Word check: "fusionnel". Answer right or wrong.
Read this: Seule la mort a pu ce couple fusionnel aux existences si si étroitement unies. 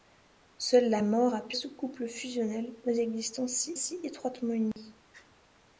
right